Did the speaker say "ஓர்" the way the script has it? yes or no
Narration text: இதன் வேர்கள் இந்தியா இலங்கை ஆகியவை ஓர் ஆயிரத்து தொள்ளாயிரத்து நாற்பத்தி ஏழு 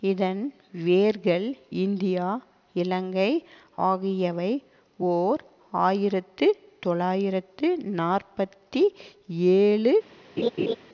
yes